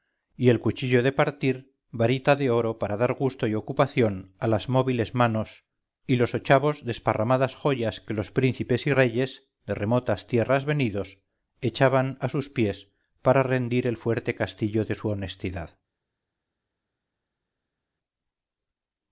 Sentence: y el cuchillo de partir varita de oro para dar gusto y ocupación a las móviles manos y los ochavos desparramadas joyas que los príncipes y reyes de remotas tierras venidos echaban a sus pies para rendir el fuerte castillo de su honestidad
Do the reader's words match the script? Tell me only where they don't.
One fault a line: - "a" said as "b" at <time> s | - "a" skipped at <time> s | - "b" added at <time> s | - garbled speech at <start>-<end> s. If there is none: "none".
none